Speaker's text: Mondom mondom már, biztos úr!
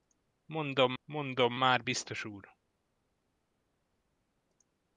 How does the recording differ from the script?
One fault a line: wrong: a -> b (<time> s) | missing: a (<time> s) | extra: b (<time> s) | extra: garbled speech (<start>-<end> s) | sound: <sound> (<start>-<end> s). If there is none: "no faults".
no faults